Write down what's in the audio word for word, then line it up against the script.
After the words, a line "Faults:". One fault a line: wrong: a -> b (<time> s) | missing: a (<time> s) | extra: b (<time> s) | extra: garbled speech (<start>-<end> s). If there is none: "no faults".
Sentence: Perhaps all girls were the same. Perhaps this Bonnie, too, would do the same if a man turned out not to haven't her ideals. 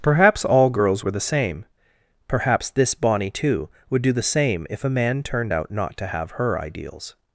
Perhaps all girls were the same. Perhaps this Bonnie, too, would do the same if a man turned out not to have her ideals.
Faults:
wrong: haven't -> have (6.1 s)